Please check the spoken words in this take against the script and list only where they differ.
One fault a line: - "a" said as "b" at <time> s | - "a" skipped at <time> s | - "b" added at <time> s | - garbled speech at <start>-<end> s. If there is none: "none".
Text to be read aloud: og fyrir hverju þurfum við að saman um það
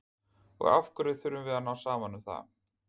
- "fyrir" said as "af" at 0.8 s
- "ná" added at 1.7 s